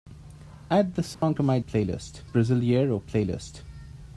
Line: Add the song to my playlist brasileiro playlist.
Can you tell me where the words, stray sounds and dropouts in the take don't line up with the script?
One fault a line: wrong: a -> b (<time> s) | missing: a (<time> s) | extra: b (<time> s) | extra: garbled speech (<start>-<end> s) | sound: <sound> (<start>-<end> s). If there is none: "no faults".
sound: dropout (1.1-1.2 s)